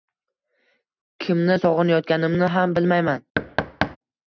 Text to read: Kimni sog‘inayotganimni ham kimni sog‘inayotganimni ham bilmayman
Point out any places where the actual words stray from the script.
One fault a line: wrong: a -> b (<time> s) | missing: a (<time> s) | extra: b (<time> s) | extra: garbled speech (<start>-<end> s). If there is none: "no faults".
missing: kimni sog‘inayotganimni ham (2.8 s)